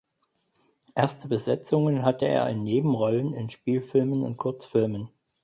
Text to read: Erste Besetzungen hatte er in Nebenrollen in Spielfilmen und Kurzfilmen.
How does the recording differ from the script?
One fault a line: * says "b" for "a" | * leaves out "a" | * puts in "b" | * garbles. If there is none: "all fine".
all fine